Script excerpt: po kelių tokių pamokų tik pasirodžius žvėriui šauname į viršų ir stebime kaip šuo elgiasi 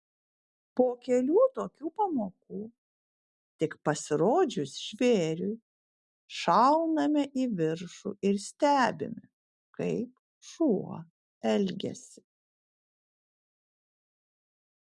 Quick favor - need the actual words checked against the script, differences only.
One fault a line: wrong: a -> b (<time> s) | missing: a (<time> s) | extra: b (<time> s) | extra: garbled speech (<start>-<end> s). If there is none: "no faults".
no faults